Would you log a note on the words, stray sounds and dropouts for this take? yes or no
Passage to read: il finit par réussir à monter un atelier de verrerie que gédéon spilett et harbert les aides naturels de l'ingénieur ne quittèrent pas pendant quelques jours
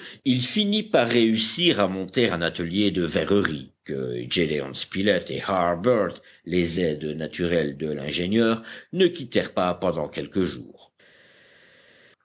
no